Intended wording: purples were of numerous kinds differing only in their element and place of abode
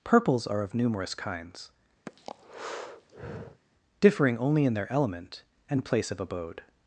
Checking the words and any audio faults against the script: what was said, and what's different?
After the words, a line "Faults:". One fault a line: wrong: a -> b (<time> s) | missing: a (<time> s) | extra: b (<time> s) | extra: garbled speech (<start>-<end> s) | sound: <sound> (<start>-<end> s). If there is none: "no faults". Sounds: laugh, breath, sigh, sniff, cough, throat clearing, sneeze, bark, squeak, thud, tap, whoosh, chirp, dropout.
purples are of numerous kinds differing only in their element and place of abode
Faults:
wrong: were -> are (0.5 s)
sound: breath (2.1-3.6 s)